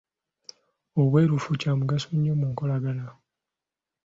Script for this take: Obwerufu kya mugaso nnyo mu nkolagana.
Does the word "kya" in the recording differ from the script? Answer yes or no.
no